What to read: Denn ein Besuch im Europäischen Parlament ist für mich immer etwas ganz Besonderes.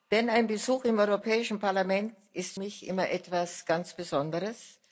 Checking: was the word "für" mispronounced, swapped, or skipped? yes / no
yes